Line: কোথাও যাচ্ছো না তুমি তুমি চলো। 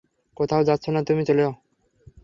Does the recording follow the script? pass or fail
fail